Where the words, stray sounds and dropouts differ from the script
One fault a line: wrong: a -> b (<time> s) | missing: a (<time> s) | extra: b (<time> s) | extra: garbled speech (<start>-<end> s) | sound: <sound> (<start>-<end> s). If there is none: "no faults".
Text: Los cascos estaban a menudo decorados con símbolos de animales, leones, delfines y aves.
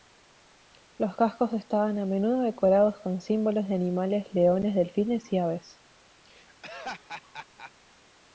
sound: laugh (6.2-7.7 s)